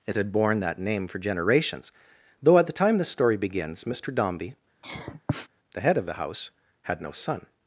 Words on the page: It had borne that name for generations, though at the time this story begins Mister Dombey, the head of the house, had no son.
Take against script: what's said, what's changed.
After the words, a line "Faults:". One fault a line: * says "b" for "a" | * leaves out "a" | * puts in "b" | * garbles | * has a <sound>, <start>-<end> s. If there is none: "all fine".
It had borne that name for generations, though at the time this story begins Mister Dombey, the head of the house, had no son.
Faults:
* has a sniff, 4.8-5.5 s